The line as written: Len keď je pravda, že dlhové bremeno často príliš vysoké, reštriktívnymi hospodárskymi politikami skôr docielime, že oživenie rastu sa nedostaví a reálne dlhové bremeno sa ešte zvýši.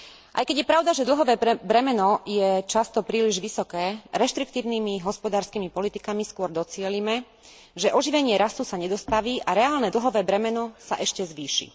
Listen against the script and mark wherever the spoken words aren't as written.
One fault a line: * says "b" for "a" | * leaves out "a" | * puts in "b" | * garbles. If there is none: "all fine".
* says "Aj" for "Len"
* puts in "je"